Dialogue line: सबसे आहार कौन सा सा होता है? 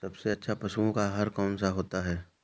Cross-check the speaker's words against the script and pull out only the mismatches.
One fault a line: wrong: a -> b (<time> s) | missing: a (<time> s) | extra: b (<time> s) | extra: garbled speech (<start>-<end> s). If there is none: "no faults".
extra: अच्छा पशुओं का (0.3 s)
missing: सा (1.7 s)